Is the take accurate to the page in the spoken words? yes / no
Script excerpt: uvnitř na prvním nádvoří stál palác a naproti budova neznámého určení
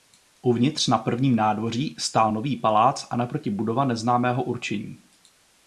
no